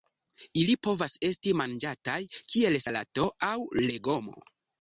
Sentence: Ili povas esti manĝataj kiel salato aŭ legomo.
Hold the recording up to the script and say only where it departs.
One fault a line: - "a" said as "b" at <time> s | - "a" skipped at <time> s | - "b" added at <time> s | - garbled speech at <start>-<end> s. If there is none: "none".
none